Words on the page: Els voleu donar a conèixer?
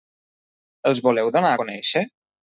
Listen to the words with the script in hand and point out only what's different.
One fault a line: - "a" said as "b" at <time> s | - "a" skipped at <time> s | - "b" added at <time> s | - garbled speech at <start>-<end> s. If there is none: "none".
none